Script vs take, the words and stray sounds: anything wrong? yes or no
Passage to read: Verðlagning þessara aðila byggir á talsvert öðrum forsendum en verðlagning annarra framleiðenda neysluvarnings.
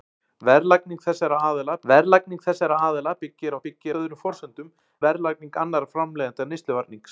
yes